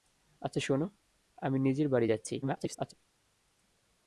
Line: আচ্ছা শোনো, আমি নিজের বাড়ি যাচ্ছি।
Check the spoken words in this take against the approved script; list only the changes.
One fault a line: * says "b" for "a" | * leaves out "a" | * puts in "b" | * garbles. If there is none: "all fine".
* garbles